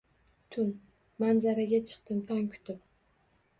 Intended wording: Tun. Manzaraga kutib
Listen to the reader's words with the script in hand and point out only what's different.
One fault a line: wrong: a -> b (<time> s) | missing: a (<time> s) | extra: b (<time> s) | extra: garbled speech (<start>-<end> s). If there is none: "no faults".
extra: chiqdim tong (1.9 s)